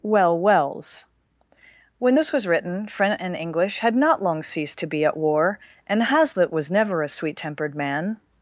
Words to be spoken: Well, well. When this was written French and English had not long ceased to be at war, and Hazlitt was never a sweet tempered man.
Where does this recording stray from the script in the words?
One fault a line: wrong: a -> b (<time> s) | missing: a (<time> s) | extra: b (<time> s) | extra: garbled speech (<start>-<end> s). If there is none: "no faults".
wrong: well -> wells (0.4 s)